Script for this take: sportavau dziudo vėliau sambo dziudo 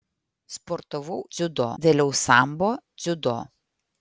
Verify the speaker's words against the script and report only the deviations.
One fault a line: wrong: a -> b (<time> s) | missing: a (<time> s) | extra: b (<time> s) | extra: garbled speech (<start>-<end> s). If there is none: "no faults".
no faults